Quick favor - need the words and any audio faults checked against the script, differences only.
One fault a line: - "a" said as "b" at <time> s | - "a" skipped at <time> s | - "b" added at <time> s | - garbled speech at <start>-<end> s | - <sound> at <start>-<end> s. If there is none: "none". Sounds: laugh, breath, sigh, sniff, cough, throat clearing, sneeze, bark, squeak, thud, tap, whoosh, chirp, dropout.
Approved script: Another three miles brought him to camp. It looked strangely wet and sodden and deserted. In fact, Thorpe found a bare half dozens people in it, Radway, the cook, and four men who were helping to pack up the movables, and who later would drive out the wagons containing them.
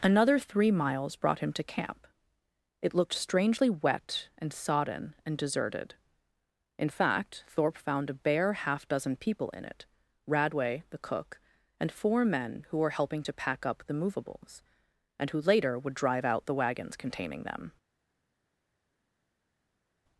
- "dozens" said as "dozen" at 8.9 s